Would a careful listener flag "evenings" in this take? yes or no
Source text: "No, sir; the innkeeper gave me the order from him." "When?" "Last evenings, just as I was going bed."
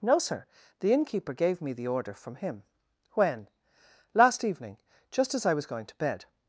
yes